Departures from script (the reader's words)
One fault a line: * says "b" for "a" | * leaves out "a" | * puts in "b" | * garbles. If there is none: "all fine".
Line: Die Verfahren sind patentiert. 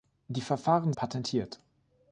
* leaves out "sind"